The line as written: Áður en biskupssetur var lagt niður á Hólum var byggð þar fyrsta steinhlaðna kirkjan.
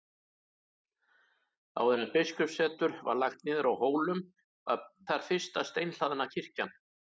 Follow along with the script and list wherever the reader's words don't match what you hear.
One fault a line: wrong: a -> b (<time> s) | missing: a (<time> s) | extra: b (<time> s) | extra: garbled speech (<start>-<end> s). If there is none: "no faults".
missing: byggð (4.8 s)